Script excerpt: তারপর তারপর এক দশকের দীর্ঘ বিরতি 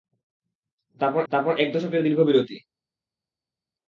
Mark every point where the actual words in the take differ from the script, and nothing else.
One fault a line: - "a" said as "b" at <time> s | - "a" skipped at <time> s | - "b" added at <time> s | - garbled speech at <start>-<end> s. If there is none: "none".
none